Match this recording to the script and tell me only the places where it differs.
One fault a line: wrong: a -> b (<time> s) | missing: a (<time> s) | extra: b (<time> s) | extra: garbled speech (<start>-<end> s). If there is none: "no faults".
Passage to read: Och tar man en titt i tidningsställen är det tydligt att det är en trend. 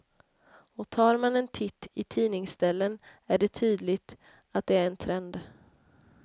no faults